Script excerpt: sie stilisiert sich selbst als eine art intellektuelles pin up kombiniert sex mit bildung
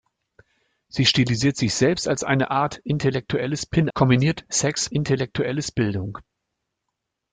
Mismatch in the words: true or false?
true